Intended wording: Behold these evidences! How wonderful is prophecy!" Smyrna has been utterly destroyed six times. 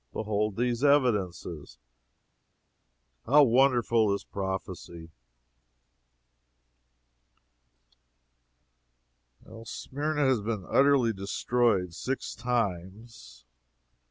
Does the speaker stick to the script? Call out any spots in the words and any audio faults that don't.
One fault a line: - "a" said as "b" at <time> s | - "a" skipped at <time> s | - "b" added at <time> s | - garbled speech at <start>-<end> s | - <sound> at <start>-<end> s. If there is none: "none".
none